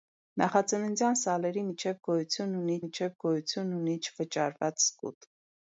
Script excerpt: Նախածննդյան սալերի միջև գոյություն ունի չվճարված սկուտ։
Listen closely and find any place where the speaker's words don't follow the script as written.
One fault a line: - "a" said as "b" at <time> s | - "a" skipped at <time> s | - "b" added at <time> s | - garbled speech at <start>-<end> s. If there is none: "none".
- "միջև գոյություն ունի" added at 2.8 s